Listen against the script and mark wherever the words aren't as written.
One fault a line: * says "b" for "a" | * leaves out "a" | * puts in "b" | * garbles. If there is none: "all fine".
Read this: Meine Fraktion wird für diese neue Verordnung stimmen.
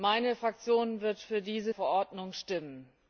* leaves out "neue"